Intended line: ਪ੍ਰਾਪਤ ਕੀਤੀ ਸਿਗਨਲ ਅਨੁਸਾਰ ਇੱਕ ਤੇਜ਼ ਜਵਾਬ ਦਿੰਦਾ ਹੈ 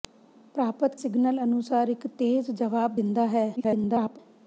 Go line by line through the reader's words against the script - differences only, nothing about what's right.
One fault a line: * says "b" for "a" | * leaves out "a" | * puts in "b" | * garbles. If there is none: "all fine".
* leaves out "ਕੀਤੀ"
* garbles